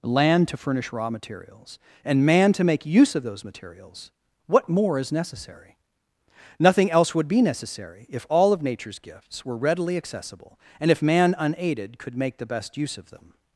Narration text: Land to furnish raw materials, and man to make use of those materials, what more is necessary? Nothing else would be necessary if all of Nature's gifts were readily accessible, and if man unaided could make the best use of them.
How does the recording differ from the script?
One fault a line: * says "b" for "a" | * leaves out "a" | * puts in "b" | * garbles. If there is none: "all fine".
all fine